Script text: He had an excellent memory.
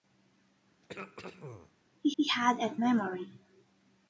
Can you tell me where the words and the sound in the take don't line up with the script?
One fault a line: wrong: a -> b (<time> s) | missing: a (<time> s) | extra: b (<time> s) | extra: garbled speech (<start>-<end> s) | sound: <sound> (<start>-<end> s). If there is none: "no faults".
sound: throat clearing (0.8-1.7 s)
extra: he (2.2 s)
missing: excellent (2.8 s)